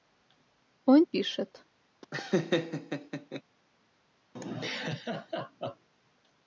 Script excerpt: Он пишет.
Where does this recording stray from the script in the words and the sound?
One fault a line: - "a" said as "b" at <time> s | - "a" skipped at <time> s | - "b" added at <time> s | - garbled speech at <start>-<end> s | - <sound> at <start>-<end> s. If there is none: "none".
- laugh at 2.0-3.4 s
- laugh at 4.4-5.9 s